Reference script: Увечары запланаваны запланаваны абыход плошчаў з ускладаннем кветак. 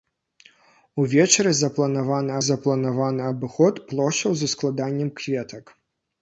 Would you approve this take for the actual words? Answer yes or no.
yes